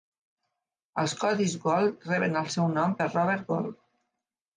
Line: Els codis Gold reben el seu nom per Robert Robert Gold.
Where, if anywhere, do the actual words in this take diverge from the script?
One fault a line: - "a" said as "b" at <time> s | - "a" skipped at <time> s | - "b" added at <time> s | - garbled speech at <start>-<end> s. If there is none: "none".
- "Robert" skipped at 3.4 s